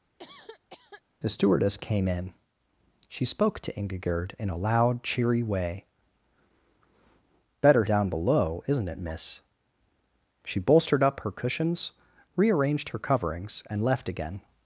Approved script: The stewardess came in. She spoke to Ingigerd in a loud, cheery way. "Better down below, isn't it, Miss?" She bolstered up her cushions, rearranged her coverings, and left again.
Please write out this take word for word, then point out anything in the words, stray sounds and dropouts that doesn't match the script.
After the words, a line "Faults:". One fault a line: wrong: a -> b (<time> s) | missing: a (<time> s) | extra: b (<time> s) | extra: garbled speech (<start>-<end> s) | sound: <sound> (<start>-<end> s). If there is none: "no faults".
The stewardess came in. She spoke to Ingigerd in a loud, cheery way. "Better down below, isn't it, Miss?" She bolstered up her cushions, rearranged her coverings, and left again.
Faults:
sound: cough (0.2-1.0 s)